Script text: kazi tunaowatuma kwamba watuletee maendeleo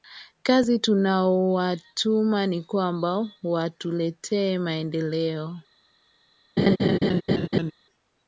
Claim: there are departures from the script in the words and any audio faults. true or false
true